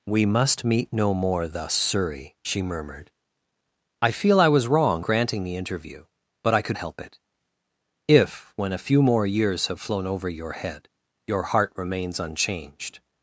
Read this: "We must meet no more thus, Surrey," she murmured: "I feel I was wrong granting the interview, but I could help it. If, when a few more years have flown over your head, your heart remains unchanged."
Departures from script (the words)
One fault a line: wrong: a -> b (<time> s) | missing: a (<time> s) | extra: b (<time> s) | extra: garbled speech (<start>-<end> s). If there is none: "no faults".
no faults